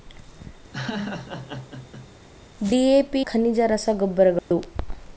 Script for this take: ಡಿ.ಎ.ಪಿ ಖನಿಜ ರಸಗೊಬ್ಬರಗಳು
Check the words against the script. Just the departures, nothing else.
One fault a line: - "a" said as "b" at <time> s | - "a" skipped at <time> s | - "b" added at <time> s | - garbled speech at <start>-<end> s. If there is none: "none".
none